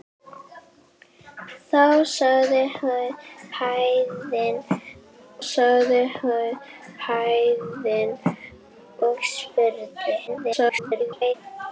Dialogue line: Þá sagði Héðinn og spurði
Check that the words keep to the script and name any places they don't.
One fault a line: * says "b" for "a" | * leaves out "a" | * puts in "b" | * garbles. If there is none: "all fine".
* puts in "sagði Héðinn"
* garbles